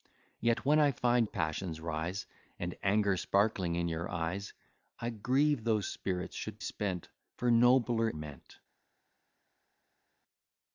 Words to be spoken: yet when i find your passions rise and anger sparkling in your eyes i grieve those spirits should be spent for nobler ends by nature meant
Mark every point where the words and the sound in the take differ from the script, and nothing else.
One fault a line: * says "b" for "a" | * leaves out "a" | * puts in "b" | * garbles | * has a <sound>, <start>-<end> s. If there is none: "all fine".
* leaves out "your"
* leaves out "be"
* leaves out "ends by nature"